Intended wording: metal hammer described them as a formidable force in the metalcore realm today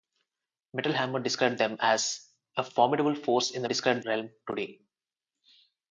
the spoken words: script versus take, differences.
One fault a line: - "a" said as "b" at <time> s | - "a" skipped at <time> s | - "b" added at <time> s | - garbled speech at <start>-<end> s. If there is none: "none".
- "metalcore" said as "described" at 3.6 s